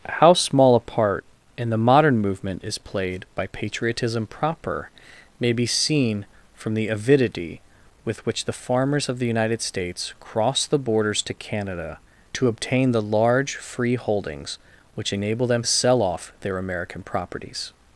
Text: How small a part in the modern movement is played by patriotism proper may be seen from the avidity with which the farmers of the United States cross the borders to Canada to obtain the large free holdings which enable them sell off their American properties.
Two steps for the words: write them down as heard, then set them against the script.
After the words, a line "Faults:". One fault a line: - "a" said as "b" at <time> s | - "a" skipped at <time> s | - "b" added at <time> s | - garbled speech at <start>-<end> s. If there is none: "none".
How small a part in the modern movement is played by patriotism proper may be seen from the avidity with which the farmers of the United States cross the borders to Canada to obtain the large free holdings which enable them sell off their American properties.
Faults:
none